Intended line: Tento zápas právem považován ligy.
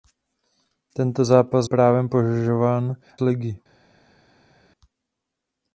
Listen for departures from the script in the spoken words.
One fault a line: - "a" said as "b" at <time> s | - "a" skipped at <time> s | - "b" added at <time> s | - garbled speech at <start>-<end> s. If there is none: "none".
none